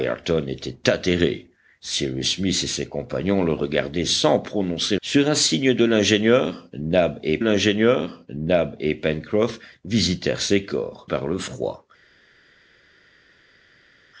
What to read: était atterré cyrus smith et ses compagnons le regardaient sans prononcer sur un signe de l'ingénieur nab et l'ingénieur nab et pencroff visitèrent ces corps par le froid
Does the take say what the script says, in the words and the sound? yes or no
yes